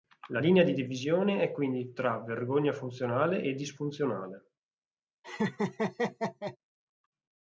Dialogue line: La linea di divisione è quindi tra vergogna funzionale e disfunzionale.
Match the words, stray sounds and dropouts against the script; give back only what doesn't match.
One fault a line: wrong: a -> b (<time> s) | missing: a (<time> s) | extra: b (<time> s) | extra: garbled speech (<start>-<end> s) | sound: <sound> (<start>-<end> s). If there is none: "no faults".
sound: laugh (5.2-6.6 s)